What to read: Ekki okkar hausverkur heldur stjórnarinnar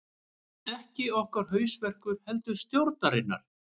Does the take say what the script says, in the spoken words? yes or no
yes